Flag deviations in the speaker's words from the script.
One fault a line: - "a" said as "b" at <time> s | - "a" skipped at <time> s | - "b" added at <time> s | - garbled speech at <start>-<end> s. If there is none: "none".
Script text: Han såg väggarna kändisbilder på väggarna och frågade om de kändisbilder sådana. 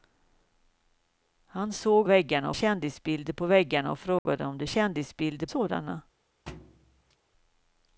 none